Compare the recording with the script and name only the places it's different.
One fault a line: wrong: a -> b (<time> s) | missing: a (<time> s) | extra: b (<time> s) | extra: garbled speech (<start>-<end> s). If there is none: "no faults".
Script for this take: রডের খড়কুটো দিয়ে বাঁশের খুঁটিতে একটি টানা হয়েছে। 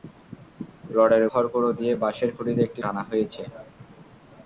no faults